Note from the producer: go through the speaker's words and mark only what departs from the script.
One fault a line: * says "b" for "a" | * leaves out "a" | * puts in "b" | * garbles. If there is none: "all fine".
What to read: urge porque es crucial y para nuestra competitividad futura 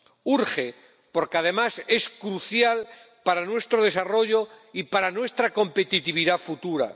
* puts in "además"
* puts in "para nuestro desarrollo"